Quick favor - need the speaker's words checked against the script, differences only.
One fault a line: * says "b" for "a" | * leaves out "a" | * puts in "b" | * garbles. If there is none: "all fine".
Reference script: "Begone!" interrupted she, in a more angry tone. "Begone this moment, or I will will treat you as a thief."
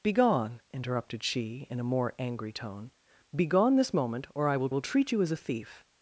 all fine